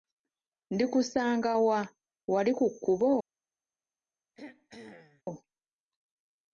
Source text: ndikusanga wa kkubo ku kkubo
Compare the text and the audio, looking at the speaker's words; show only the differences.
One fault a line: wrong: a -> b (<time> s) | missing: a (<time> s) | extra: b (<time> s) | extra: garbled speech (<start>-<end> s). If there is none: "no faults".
wrong: kkubo -> wali (2.3 s)